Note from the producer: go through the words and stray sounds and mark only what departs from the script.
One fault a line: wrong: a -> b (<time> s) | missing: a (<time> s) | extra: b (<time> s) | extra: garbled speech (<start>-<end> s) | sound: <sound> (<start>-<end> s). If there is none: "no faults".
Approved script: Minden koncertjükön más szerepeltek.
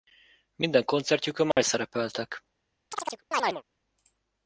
sound: dropout (1.5-1.6 s)
sound: chirp (2.9-3.6 s)